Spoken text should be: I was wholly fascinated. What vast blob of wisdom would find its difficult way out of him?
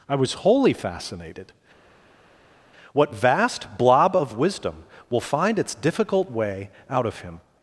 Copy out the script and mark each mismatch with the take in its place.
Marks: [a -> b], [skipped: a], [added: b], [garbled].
I was wholly fascinated. What vast blob of wisdom [would -> will] find its difficult way out of him?